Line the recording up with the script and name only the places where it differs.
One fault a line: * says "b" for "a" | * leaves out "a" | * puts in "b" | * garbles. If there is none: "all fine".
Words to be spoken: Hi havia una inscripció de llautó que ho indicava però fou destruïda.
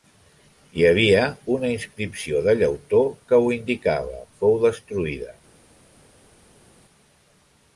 * leaves out "però"